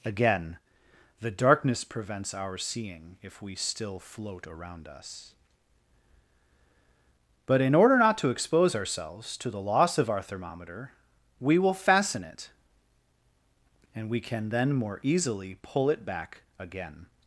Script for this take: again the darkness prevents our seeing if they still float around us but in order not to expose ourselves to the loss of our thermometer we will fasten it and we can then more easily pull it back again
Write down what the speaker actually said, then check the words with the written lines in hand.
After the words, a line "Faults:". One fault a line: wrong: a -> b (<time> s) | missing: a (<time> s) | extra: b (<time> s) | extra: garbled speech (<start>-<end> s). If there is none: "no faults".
again the darkness prevents our seeing if we still float around us but in order not to expose ourselves to the loss of our thermometer we will fasten it and we can then more easily pull it back again
Faults:
wrong: they -> we (3.4 s)